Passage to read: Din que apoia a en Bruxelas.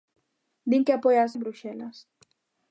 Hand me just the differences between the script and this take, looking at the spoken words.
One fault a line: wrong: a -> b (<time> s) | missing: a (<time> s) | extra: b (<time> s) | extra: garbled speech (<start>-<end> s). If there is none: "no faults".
no faults